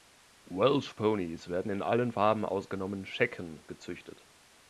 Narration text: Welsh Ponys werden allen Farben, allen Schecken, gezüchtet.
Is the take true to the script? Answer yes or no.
no